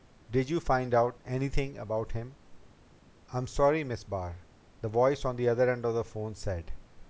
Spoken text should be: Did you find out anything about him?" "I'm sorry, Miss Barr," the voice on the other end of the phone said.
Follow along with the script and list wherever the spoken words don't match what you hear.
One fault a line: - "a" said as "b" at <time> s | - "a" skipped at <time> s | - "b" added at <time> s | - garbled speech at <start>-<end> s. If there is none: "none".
none